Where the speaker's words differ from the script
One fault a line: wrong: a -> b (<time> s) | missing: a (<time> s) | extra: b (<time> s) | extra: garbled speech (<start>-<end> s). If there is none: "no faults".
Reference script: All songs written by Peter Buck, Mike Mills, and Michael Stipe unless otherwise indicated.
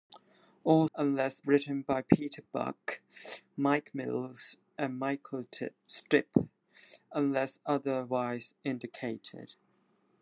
wrong: songs -> unless (1.0 s)